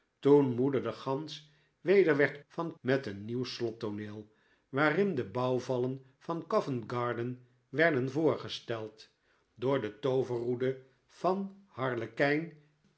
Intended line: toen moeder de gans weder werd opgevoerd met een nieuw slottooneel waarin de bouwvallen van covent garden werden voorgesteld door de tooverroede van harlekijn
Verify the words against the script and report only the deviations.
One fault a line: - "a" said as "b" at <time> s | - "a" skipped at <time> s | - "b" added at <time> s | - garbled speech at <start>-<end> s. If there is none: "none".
- "opgevoerd" said as "van" at 2.5 s